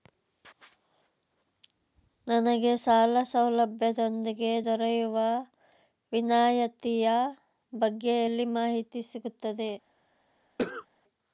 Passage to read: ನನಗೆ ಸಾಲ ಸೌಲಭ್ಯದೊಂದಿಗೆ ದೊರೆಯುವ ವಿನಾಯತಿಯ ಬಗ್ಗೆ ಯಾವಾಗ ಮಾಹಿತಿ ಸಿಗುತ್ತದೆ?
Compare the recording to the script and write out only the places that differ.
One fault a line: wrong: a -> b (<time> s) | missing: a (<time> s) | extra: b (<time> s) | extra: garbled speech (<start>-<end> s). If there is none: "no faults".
wrong: ಯಾವಾಗ -> ಎಲ್ಲಿ (8.2 s)